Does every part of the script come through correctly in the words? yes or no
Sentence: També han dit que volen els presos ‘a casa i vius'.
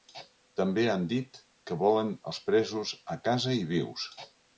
yes